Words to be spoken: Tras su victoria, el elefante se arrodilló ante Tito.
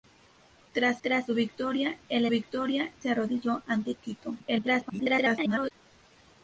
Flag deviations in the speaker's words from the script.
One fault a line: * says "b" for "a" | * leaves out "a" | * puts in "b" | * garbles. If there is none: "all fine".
* puts in "tras"
* says "victoria" for "elefante"
* garbles